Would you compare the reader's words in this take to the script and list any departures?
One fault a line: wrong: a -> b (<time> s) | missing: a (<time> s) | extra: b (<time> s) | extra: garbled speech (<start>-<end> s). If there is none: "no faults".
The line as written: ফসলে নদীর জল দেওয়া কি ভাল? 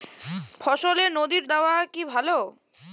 missing: জল (1.4 s)